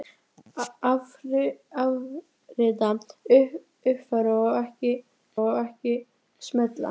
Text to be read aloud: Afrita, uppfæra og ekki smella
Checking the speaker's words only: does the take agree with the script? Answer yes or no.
no